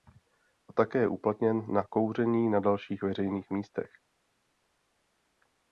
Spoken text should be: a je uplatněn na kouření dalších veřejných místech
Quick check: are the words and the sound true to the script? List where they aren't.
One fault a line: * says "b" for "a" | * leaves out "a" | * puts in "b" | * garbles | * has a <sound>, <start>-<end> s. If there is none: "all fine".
* puts in "také"
* puts in "na"